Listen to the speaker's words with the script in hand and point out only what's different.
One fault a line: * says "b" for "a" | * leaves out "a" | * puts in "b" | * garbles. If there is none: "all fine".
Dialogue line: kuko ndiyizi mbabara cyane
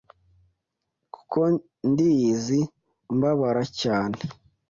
all fine